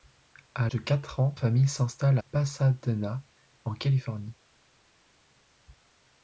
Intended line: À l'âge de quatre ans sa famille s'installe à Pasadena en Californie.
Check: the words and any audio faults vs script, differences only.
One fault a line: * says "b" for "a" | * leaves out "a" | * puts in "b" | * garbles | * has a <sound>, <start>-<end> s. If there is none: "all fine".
* leaves out "l'âge"
* leaves out "sa"
* leaves out "à"